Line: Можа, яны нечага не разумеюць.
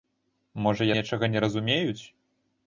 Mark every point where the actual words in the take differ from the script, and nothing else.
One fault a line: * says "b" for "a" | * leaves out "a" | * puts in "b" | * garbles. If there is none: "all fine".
* leaves out "яны"